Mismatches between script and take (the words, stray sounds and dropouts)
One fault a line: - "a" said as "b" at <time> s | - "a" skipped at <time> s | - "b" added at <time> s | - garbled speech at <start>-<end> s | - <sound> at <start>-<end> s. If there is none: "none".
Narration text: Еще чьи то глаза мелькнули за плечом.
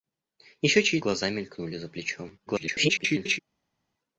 - "то" skipped at 1.0 s
- garbled speech at 2.5-3.4 s